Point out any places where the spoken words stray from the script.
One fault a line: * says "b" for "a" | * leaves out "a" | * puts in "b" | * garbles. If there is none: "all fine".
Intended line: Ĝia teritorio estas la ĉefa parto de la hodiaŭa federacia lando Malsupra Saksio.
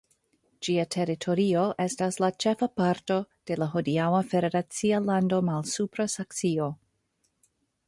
all fine